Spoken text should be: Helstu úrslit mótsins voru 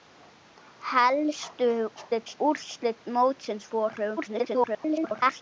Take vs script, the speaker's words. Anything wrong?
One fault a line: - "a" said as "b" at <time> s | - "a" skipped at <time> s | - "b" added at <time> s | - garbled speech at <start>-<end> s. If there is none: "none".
- garbled speech at 2.0-2.4 s
- garbled speech at 4.2-5.4 s